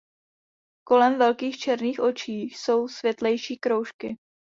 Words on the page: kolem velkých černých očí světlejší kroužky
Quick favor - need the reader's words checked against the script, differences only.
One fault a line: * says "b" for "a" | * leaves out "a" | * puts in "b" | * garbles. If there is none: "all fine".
* puts in "jsou"